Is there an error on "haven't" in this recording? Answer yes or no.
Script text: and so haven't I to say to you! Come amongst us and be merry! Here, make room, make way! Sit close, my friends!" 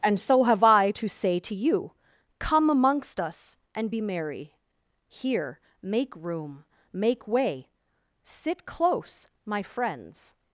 yes